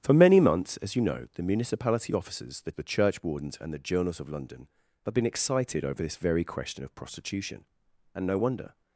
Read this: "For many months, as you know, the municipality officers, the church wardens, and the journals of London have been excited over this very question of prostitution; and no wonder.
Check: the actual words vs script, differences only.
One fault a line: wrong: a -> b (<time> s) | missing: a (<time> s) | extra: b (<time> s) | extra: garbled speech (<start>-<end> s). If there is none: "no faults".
extra: the (2.7 s)